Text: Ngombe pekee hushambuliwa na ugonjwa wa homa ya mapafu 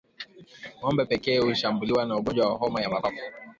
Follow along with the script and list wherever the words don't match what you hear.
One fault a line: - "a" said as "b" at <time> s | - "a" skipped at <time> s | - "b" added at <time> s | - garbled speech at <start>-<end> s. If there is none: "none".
none